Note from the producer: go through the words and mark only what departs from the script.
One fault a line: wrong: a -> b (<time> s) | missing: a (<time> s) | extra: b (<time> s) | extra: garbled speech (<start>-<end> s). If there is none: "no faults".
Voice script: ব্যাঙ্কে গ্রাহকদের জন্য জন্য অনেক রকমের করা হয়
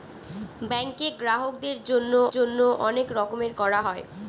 no faults